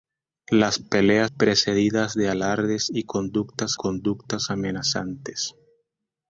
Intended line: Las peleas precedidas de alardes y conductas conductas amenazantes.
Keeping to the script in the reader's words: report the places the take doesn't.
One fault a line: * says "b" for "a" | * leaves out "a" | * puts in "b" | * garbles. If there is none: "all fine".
all fine